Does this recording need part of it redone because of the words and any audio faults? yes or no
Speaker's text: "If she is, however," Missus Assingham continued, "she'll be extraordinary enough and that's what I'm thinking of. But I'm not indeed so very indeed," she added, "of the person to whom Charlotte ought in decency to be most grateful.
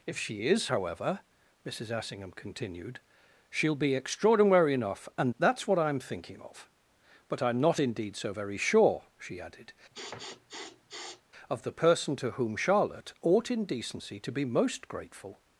yes